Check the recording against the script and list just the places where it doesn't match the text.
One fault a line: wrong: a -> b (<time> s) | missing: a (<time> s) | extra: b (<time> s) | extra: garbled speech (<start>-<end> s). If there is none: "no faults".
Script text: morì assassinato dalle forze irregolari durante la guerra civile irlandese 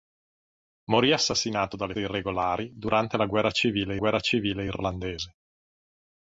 missing: forze (1.9 s)
extra: guerra civile (3.9 s)